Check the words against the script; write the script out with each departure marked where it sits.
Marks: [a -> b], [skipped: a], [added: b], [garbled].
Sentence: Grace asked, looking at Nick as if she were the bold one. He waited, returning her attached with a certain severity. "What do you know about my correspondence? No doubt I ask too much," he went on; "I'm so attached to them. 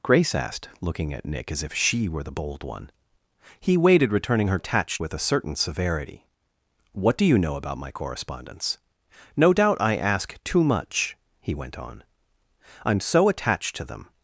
Grace asked, looking at Nick as if she were the bold one. He waited, returning her attached with a certain severity. "What do you know about my correspondence? No doubt I ask too much," he went on; "I'm so attached to them.